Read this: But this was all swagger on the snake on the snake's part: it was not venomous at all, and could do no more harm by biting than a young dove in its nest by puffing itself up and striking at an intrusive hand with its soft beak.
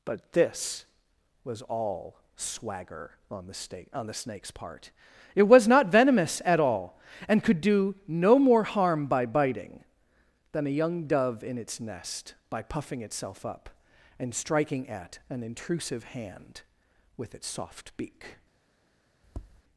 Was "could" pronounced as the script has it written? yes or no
yes